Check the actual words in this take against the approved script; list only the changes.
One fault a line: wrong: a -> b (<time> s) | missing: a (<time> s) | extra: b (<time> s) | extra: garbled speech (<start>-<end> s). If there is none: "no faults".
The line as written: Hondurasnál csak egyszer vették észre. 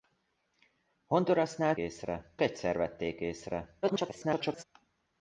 wrong: csak -> észre (1.8 s)
extra: garbled speech (3.8-4.6 s)